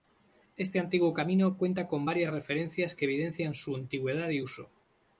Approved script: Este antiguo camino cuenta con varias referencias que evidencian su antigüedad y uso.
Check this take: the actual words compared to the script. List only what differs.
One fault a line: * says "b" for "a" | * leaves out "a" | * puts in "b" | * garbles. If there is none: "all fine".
all fine